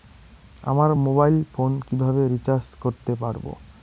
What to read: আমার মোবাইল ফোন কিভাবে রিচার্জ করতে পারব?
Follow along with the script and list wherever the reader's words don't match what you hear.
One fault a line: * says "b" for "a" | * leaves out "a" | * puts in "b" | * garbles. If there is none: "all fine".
all fine